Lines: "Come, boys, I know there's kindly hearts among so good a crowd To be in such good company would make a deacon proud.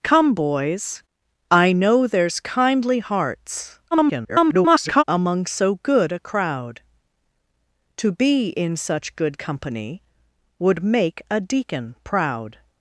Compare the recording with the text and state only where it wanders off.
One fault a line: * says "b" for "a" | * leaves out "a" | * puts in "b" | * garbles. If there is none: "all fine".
* garbles